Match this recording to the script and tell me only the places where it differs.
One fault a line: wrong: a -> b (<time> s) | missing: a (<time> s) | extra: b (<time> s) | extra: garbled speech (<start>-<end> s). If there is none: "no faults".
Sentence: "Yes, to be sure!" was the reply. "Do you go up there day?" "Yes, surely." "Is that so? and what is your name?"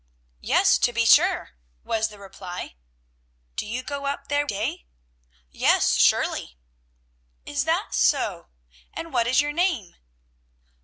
no faults